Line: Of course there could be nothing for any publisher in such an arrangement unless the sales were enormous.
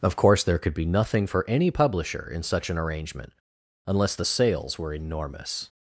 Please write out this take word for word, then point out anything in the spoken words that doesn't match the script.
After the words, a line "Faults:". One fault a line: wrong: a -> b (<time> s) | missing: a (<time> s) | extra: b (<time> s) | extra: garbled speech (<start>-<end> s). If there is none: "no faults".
Of course there could be nothing for any publisher in such an arrangement unless the sales were enormous.
Faults:
no faults